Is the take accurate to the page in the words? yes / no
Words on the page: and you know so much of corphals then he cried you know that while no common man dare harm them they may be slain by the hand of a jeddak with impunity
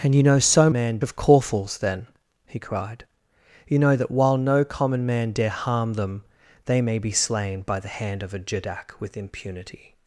no